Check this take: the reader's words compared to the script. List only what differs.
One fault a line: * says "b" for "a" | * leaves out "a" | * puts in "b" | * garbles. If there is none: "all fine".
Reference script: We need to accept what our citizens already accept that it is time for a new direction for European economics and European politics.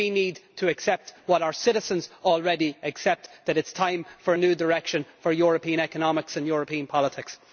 all fine